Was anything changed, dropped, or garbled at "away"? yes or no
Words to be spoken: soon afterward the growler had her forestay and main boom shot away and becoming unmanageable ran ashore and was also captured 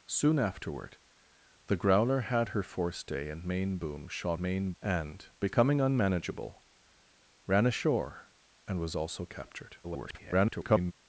yes